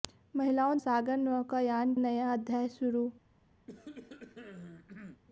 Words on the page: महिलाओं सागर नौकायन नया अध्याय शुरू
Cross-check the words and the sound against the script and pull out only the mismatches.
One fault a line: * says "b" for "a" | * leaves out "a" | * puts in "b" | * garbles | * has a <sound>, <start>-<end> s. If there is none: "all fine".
* has a cough, 3.7-5.2 s